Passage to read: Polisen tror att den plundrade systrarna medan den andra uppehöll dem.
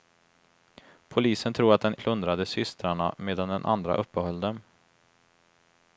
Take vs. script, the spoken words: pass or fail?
pass